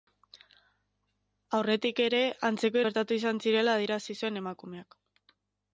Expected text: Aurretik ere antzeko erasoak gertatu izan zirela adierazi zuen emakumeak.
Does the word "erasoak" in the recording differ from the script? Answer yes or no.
yes